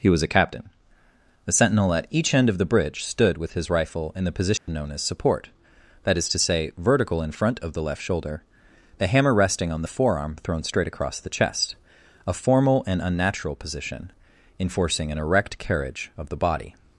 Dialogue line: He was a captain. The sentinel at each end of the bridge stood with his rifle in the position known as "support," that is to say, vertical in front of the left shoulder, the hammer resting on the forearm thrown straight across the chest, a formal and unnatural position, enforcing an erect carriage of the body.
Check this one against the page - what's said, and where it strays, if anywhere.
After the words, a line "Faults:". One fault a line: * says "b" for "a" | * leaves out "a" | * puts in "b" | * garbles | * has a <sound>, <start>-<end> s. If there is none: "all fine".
He was a captain. The sentinel at each end of the bridge stood with his rifle in the position known as "support," that is to say, vertical in front of the left shoulder, the hammer resting on the forearm thrown straight across the chest, a formal and unnatural position, enforcing an erect carriage of the body.
Faults:
* has a dropout, 4.6-4.7 s